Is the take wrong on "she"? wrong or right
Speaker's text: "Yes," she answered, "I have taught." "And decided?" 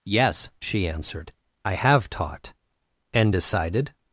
right